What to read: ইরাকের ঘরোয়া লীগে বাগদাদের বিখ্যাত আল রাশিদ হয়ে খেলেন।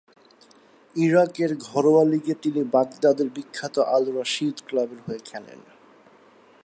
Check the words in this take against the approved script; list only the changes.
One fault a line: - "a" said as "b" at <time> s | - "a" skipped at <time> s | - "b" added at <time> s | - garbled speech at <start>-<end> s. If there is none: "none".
- "তিনি" added at 2.4 s
- "ক্লাবের" added at 4.7 s